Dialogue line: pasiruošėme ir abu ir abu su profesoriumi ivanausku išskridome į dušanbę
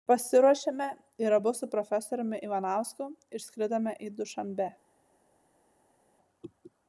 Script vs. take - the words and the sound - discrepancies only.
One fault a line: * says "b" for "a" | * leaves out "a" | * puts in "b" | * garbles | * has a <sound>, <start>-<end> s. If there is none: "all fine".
* leaves out "ir abu"